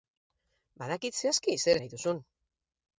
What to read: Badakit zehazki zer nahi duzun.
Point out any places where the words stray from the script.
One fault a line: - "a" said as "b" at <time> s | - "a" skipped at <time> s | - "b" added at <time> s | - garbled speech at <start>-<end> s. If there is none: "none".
none